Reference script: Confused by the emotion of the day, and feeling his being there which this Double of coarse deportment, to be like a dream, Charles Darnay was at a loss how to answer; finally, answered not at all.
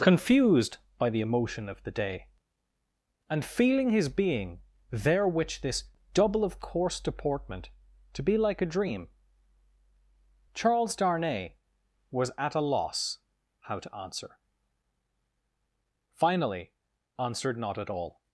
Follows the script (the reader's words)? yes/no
yes